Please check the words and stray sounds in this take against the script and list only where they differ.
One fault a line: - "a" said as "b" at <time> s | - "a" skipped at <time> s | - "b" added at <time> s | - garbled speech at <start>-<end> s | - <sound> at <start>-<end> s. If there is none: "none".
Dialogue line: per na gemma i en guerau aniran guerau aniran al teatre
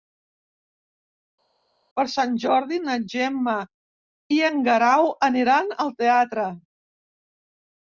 - "sant jordi" added at 2.1 s
- "guerau aniran" skipped at 5.8 s